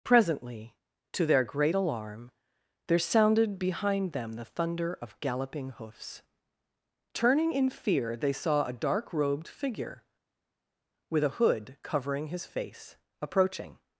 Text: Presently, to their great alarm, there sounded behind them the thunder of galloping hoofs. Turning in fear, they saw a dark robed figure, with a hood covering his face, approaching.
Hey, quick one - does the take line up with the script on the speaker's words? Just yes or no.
yes